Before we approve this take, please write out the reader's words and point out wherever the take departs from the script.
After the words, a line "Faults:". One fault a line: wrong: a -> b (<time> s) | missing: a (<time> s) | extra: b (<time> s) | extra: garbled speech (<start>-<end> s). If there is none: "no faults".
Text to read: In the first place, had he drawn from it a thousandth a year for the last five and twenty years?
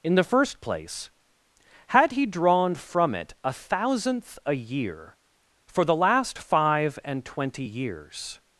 In the first place, had he drawn from it a thousandth a year for the last five and twenty years?
Faults:
no faults